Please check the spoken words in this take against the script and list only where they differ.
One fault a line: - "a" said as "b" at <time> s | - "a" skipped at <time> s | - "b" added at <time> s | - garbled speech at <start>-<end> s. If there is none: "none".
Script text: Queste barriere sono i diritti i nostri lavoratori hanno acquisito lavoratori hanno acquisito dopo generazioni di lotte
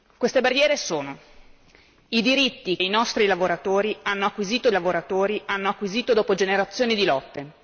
none